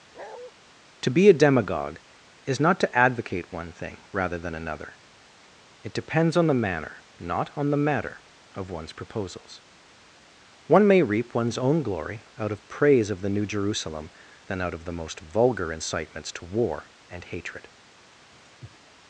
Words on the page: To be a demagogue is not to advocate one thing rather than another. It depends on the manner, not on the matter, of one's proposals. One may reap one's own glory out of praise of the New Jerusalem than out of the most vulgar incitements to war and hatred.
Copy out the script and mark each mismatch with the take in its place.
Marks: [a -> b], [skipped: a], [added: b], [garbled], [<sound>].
[bark] To be a demagogue is not to advocate one thing rather than another. It depends on the manner, not on the matter, of one's proposals. One may reap one's own glory out of praise of the New Jerusalem than out of the most vulgar incitements to war and hatred. [sniff]